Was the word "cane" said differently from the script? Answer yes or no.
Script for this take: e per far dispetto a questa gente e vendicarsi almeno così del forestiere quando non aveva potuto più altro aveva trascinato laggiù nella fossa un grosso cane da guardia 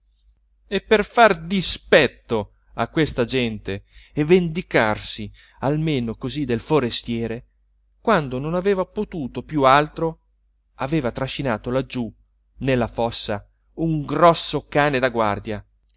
no